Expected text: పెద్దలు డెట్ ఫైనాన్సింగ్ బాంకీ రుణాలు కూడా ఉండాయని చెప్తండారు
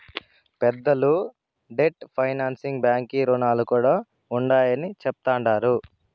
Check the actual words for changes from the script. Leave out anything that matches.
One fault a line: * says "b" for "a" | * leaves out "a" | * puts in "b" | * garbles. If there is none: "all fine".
all fine